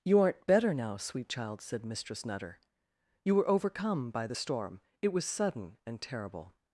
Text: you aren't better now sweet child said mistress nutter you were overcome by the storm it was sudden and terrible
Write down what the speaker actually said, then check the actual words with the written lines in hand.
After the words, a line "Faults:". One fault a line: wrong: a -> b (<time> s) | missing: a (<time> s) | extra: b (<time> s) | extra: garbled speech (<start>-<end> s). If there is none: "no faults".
you aren't better now sweet child said mistress nutter you were overcome by the storm it was sudden and terrible
Faults:
no faults